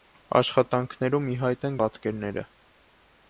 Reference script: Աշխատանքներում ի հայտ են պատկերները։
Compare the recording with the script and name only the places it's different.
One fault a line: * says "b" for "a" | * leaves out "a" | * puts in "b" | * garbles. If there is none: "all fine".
all fine